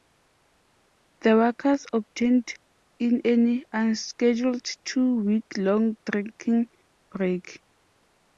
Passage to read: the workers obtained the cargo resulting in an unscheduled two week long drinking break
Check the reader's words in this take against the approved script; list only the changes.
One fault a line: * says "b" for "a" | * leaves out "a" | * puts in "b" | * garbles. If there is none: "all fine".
* leaves out "the cargo resulting"